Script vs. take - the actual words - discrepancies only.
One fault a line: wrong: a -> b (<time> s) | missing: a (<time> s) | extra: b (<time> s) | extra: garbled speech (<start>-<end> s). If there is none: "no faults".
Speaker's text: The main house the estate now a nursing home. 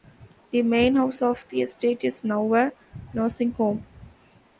extra: of (1.2 s)
extra: is (2.0 s)